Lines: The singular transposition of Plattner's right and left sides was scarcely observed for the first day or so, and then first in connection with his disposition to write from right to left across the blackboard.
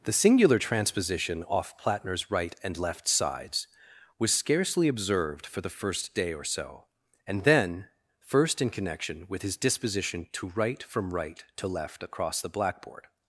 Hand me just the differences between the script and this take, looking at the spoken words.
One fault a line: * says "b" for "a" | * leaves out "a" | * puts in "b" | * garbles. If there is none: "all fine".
* says "off" for "of"